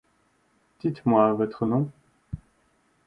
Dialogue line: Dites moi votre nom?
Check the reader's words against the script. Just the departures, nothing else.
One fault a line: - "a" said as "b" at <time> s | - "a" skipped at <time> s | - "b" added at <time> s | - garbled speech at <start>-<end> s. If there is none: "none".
none